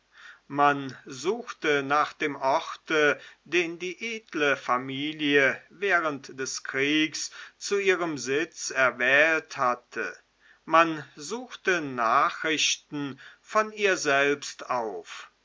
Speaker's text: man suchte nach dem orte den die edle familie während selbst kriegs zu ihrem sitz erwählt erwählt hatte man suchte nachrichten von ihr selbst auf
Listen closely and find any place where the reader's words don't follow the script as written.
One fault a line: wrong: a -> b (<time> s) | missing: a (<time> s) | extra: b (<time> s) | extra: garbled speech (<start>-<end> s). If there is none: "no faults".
wrong: selbst -> des (6.4 s)
missing: erwählt (9.6 s)